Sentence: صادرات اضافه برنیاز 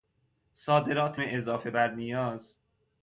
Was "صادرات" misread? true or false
false